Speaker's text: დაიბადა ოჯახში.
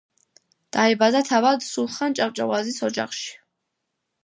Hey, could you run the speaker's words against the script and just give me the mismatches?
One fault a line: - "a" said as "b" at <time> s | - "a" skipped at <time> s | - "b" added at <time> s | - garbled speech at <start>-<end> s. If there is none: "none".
- "თავად სულხან ჭავჭავაძის" added at 1.3 s